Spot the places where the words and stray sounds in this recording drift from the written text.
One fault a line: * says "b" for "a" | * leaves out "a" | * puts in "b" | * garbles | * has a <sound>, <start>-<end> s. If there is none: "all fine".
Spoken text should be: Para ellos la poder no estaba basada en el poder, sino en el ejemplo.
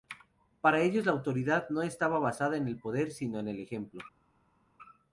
* says "autoridad" for "poder"